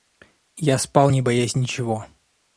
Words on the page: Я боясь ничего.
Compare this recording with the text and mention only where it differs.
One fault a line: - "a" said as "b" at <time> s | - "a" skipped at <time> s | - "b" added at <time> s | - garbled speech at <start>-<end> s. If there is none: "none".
- "спал не" added at 0.8 s